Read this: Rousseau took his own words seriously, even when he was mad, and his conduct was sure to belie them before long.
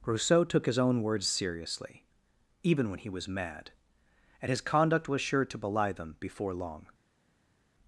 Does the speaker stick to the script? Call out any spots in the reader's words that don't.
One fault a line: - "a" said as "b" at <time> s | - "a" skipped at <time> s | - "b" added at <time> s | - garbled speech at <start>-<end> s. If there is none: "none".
none